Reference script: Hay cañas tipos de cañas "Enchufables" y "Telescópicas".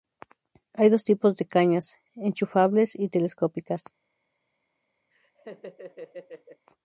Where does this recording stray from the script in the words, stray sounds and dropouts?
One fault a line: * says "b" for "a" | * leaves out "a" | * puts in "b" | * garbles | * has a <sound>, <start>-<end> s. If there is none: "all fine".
* says "dos" for "cañas"
* has a laugh, 5.1-6.6 s